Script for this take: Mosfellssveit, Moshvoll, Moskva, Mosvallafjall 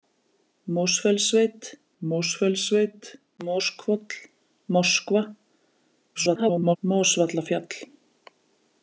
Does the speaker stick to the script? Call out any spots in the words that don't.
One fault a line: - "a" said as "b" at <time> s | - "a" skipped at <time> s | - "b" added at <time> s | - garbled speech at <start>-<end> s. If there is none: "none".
- "mosfellssveit" added at 2.0 s
- garbled speech at 6.1-6.8 s